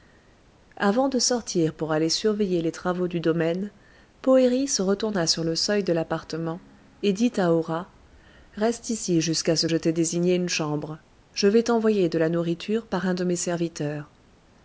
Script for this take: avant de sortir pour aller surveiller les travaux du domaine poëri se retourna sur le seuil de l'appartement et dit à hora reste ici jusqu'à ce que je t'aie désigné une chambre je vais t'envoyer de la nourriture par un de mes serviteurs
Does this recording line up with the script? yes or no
no